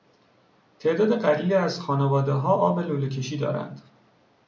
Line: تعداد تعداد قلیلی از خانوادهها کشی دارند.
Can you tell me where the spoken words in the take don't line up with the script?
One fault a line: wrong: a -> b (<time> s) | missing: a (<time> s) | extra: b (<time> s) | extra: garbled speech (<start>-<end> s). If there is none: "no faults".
missing: تعداد (1.2 s)
extra: آب لوله (2.5 s)